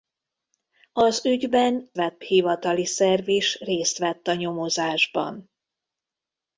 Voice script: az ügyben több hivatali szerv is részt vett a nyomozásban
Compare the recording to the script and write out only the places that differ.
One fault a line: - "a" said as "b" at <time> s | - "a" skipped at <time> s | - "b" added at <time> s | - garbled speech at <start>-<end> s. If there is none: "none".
- "több" said as "vett" at 1.9 s